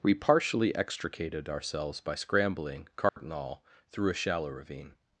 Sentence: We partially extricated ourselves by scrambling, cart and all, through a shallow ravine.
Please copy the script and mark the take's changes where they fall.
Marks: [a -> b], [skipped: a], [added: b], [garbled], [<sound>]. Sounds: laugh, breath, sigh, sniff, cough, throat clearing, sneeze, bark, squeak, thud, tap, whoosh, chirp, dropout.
We partially extricated ourselves by scrambling, cart [dropout] and all, through a shallow ravine.